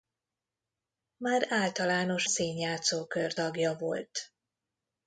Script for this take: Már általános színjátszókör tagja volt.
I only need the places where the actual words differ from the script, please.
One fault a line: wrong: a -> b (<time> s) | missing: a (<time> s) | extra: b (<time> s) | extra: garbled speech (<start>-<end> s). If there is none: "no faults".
no faults